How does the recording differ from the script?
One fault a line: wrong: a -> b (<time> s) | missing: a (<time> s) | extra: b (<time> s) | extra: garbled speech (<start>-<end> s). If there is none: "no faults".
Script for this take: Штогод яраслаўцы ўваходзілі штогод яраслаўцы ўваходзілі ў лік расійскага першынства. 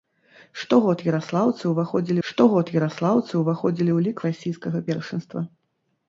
no faults